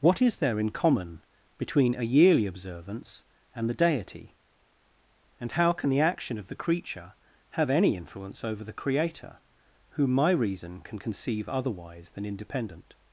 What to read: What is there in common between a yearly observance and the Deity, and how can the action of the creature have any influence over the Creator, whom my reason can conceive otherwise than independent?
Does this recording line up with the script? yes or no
yes